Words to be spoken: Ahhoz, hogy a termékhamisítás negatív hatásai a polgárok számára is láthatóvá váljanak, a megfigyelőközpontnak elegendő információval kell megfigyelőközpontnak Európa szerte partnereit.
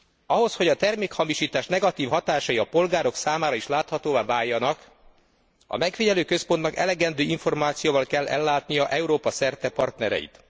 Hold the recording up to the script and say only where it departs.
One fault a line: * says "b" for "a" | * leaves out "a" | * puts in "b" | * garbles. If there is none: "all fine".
* says "ellátnia" for "megfigyelőközpontnak"